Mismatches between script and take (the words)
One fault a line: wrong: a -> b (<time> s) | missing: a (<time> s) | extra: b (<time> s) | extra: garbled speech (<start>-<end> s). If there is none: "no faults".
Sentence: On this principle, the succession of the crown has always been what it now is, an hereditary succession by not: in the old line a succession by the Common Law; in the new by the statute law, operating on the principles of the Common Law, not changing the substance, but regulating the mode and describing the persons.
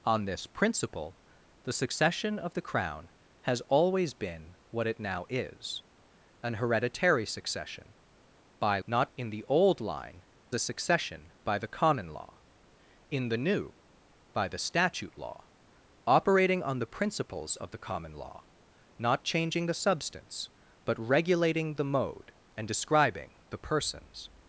no faults